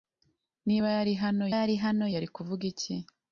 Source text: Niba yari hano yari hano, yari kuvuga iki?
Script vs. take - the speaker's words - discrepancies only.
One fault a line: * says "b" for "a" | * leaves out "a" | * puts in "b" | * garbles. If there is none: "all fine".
all fine